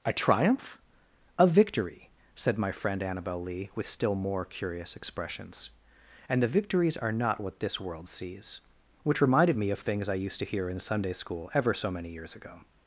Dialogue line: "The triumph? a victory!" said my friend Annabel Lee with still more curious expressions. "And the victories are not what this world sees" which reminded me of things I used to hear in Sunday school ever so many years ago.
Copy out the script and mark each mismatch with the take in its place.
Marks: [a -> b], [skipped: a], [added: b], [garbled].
["The -> A] triumph? a victory!" said my friend Annabel Lee with still more curious expressions. "And the victories are not what this world sees" which reminded me of things I used to hear in Sunday school ever so many years ago.